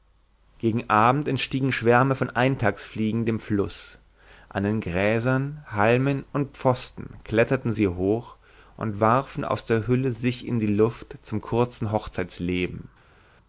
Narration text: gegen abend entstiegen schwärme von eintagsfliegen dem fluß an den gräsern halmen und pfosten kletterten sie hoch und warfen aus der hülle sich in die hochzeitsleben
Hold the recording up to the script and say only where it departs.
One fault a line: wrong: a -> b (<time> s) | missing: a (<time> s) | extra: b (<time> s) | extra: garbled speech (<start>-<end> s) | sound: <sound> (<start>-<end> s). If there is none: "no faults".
extra: luft zum kurzen (10.7 s)